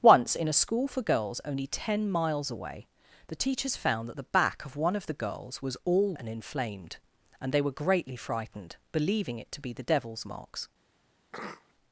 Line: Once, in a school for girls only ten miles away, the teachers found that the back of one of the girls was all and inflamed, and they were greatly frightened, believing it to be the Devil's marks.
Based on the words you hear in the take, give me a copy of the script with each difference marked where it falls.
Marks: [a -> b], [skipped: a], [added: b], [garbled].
Once, in a school for girls only ten miles away, the teachers found that the back of one of the girls was all and inflamed, and they were greatly frightened, believing it to be the Devil's marks.